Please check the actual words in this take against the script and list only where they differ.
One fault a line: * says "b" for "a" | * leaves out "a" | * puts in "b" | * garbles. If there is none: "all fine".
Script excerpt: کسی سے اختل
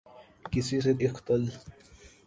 all fine